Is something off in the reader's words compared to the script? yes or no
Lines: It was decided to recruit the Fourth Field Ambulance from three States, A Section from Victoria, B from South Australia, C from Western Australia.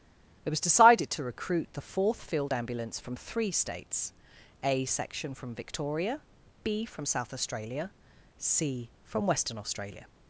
no